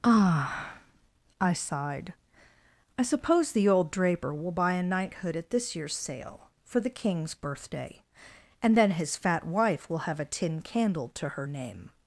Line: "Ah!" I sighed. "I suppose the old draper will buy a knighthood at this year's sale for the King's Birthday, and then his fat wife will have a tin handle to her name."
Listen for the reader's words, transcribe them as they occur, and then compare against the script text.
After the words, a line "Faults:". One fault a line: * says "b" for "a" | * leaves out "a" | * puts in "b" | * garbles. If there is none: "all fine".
"Ah!" I sighed. "I suppose the old draper will buy a knighthood at this year's sale for the King's Birthday, and then his fat wife will have a tin candle to her name."
Faults:
* says "candle" for "handle"